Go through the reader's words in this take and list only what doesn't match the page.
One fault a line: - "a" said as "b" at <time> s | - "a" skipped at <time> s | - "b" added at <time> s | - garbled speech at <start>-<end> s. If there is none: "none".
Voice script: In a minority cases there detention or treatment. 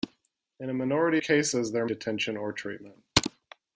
none